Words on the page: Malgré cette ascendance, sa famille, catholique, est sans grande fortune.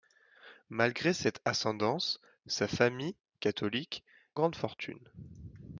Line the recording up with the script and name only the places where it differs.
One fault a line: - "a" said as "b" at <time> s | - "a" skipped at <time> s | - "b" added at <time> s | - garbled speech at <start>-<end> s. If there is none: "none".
- "est sans" skipped at 4.0 s